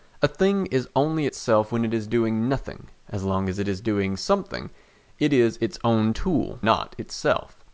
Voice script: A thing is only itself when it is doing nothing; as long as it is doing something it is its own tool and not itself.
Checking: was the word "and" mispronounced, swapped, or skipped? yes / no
yes